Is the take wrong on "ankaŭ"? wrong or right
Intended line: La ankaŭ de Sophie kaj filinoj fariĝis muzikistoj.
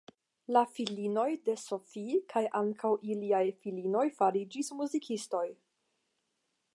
wrong